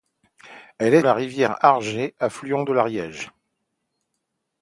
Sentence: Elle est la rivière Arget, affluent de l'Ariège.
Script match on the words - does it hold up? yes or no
yes